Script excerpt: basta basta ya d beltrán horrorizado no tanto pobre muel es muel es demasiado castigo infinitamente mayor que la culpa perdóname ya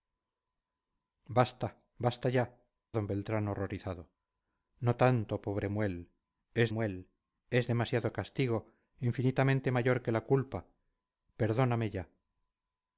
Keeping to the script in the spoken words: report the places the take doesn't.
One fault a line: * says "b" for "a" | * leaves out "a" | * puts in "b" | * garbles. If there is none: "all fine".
all fine